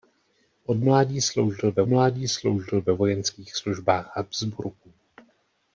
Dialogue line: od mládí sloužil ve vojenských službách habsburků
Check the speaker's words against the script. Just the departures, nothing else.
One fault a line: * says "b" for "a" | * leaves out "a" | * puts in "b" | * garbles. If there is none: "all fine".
* puts in "mládí sloužil ve"